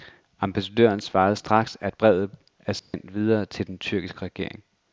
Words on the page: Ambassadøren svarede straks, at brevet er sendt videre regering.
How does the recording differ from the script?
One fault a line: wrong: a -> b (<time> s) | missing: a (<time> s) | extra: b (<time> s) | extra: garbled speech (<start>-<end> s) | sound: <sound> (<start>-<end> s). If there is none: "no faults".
sound: dropout (2.8-2.9 s)
extra: til den tyrkiske (3.5 s)